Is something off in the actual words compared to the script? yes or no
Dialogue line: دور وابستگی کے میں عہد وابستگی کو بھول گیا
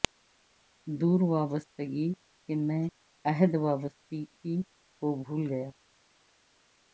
no